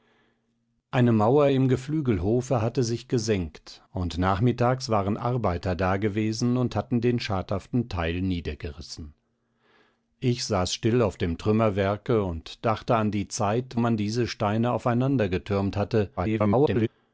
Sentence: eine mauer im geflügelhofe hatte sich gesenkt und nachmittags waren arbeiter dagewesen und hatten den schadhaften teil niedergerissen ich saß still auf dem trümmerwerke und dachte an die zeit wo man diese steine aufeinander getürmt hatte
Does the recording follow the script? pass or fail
fail